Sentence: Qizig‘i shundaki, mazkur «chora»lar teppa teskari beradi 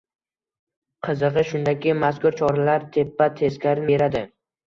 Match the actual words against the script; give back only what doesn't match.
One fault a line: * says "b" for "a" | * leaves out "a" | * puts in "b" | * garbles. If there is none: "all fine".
all fine